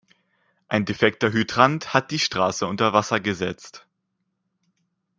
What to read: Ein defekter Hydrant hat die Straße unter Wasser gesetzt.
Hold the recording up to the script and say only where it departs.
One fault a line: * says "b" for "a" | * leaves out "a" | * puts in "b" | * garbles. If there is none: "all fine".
all fine